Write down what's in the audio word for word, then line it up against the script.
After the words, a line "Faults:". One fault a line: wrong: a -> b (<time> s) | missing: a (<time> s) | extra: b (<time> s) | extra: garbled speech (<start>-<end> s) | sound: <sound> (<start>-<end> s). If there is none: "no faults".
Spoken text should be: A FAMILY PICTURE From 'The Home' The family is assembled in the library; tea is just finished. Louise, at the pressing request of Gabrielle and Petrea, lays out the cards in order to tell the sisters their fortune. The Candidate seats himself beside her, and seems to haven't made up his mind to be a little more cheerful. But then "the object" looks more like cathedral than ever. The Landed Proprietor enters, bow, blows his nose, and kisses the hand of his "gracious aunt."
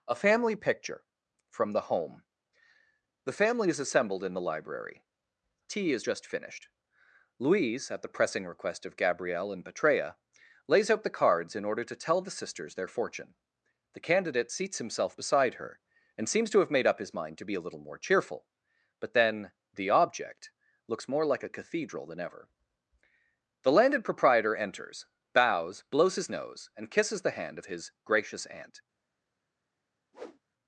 A FAMILY PICTURE From 'The Home' The family is assembled in the library; tea is just finished. Louise, at the pressing request of Gabrielle and Petrea, lays out the cards in order to tell the sisters their fortune. The Candidate seats himself beside her, and seems to have made up his mind to be a little more cheerful. But then "the object" looks more like a cathedral than ever. The Landed Proprietor enters, bows, blows his nose, and kisses the hand of his "gracious aunt."
Faults:
wrong: haven't -> have (16.6 s)
extra: a (21.4 s)
wrong: bow -> bows (25.3 s)
sound: whoosh (30.1-30.4 s)